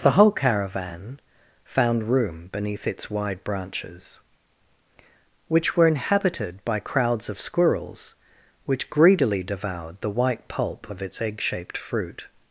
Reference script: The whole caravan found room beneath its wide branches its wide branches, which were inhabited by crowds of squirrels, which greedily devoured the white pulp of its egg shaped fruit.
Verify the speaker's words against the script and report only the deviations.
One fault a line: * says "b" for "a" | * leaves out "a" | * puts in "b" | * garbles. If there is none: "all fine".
* leaves out "its wide branches"